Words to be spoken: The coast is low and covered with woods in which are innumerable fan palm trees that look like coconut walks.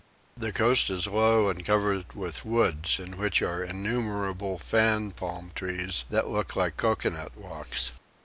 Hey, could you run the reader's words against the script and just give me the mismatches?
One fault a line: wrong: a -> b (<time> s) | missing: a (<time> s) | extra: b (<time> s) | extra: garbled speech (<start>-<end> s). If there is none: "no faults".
no faults